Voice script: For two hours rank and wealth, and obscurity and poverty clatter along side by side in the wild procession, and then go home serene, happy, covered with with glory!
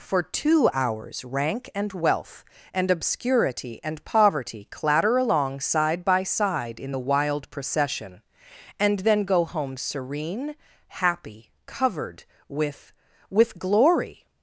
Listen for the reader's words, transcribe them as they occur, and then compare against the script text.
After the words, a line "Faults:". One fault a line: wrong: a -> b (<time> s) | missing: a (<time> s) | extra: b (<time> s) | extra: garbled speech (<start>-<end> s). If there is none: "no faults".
For two hours rank and wealth, and obscurity and poverty clatter along side by side in the wild procession, and then go home serene, happy, covered with with glory!
Faults:
no faults